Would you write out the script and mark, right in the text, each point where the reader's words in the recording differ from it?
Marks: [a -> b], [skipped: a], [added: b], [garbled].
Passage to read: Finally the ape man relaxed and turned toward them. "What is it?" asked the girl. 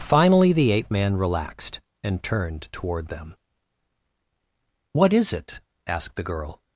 Finally the ape man relaxed and turned toward them. "What is it?" asked the girl.